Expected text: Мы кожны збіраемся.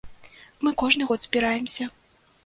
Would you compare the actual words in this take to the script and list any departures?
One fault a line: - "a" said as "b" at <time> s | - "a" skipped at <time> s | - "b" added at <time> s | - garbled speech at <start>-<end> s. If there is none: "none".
- "год" added at 1.1 s